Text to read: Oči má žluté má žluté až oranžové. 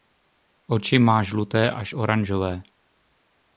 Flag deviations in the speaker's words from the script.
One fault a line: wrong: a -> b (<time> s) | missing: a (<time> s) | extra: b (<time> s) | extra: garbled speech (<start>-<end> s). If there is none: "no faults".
missing: má žluté (1.7 s)